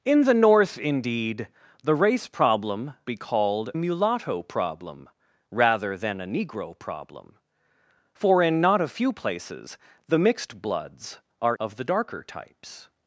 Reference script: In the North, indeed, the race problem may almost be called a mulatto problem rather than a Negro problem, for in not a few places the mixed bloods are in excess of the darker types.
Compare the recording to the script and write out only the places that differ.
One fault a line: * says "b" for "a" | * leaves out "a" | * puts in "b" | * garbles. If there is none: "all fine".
* leaves out "may almost"
* leaves out "a"
* leaves out "in excess"